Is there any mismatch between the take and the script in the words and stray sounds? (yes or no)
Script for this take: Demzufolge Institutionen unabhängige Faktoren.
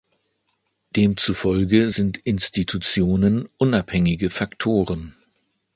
yes